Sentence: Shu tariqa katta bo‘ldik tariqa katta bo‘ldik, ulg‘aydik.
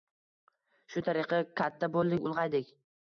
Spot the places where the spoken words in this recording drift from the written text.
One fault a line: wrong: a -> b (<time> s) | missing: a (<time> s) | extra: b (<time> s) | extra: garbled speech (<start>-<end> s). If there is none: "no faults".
missing: tariqa katta bo‘ldik (2.2 s)